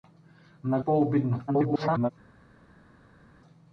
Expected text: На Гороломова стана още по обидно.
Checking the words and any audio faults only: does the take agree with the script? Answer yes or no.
no